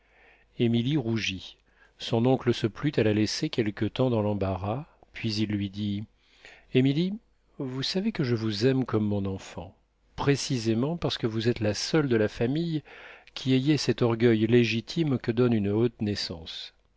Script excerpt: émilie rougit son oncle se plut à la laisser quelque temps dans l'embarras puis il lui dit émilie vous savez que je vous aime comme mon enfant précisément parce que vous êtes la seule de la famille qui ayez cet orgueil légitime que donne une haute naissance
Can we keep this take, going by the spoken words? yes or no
yes